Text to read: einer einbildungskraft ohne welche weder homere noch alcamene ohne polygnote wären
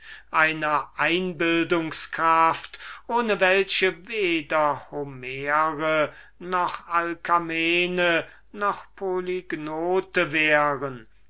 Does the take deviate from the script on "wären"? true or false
false